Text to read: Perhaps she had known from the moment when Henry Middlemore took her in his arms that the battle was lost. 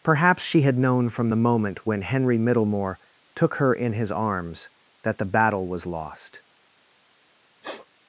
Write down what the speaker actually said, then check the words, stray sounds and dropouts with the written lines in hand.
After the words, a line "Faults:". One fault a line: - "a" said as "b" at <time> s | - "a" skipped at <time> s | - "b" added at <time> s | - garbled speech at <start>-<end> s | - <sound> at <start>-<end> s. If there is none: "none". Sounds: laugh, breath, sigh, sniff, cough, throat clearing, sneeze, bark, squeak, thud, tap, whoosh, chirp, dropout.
Perhaps she had known from the moment when Henry Middlemore took her in his arms that the battle was lost.
Faults:
- sniff at 7.6-7.9 s